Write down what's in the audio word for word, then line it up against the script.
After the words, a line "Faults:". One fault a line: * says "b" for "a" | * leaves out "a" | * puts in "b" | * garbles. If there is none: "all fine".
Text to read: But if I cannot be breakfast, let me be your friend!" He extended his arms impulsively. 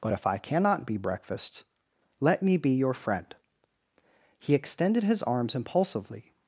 But if I cannot be breakfast, let me be your friend!" He extended his arms impulsively.
Faults:
all fine